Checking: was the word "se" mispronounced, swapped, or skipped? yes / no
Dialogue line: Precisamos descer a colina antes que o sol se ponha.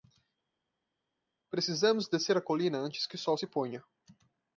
no